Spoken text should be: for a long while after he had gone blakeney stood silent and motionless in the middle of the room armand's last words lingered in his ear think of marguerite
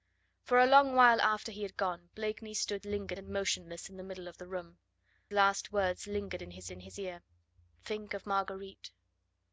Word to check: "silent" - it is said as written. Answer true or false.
false